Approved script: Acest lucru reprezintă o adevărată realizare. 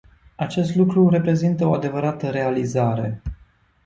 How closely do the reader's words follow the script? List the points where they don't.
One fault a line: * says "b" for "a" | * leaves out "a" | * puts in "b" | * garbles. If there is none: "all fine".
all fine